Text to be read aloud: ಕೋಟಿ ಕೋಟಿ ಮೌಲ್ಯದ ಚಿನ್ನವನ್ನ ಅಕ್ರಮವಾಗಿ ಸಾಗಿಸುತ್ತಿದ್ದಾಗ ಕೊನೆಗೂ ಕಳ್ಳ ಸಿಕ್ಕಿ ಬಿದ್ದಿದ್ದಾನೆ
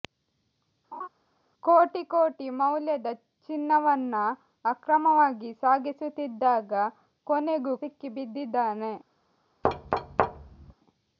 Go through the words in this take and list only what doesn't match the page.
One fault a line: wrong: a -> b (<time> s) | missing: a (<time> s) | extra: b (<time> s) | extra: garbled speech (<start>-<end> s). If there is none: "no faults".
missing: ಕಳ್ಳ (7.7 s)